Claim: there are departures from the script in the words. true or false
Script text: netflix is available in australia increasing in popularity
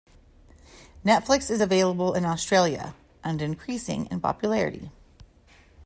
true